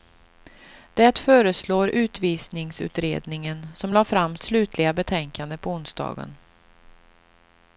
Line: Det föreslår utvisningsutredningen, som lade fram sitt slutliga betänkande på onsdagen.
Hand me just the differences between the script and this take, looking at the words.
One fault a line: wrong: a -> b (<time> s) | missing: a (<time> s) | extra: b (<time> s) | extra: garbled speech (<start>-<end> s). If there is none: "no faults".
missing: sitt (4.4 s)